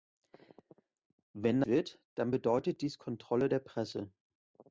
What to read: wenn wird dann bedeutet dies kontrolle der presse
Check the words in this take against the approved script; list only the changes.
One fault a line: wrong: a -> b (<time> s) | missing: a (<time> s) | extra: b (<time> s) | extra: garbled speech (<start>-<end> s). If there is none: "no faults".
no faults